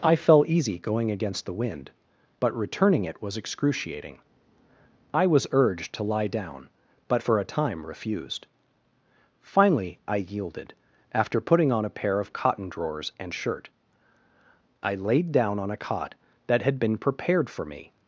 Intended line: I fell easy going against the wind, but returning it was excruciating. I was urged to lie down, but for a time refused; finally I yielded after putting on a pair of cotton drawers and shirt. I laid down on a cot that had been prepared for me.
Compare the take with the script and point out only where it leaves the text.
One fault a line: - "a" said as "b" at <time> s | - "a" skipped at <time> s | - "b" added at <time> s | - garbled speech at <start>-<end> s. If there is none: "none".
none